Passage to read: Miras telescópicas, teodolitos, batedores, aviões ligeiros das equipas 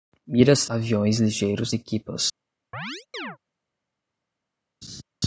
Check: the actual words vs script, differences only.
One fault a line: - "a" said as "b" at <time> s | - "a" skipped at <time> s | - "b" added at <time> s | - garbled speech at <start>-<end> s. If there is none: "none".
- "telescópicas teodolitos batedores" skipped at 0.7 s
- "das" skipped at 1.7 s